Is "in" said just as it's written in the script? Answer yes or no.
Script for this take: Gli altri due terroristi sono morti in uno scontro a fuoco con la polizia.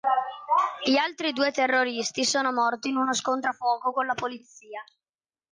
yes